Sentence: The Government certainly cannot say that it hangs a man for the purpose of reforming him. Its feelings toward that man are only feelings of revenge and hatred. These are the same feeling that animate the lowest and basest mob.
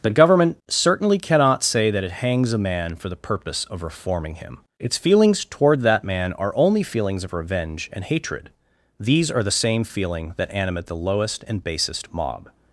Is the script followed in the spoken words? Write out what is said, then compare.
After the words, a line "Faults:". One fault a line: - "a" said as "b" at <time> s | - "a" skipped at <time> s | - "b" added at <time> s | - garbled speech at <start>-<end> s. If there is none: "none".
The Government certainly cannot say that it hangs a man for the purpose of reforming him. Its feelings toward that man are only feelings of revenge and hatred. These are the same feeling that animate the lowest and basest mob.
Faults:
none